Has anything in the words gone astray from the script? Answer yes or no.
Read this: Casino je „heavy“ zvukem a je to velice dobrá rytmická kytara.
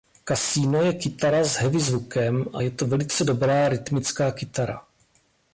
yes